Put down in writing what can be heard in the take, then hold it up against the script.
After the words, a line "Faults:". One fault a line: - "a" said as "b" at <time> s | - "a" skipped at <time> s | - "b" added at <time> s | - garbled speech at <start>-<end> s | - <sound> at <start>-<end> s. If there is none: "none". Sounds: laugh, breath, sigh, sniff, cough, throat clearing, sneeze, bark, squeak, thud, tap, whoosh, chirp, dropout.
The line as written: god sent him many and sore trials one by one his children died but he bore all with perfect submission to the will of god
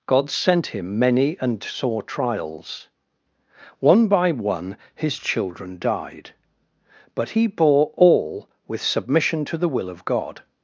god sent him many and sore trials one by one his children died but he bore all with submission to the will of god
Faults:
- "perfect" skipped at 8.8 s